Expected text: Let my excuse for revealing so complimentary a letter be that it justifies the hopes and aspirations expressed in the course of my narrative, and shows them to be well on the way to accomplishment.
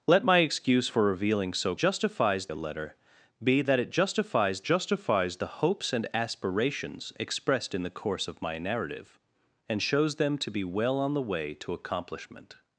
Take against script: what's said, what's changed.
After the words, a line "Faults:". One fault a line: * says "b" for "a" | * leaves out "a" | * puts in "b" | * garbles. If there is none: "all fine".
Let my excuse for revealing so justifies a letter be that it justifies justifies the hopes and aspirations expressed in the course of my narrative, and shows them to be well on the way to accomplishment.
Faults:
* says "justifies" for "complimentary"
* puts in "justifies"